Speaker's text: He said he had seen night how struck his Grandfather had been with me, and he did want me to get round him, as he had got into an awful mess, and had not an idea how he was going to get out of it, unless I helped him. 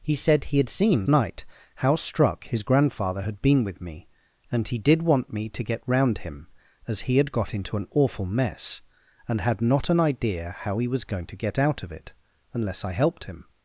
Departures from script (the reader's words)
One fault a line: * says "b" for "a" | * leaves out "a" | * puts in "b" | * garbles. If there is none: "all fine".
all fine